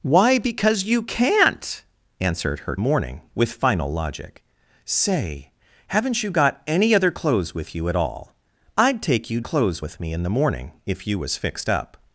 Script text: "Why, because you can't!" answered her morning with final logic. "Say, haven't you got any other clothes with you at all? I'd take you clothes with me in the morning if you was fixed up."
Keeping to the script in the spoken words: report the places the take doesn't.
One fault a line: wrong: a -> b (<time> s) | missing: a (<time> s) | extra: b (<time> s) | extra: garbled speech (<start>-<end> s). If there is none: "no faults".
no faults